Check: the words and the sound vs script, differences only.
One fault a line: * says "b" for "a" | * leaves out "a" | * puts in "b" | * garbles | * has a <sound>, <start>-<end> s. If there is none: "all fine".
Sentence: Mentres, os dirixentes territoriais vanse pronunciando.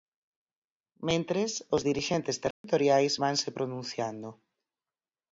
* has a dropout, 2.5-2.6 s